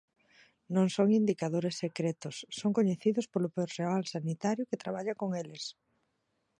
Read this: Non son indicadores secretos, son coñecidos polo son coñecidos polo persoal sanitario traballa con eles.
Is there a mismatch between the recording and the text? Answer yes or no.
yes